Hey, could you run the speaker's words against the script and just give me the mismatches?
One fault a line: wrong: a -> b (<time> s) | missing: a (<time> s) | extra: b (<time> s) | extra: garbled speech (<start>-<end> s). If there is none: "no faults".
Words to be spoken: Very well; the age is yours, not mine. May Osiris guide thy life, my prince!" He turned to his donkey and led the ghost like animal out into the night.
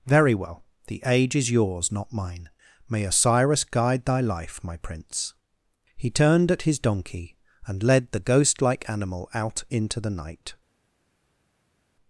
wrong: to -> at (6.5 s)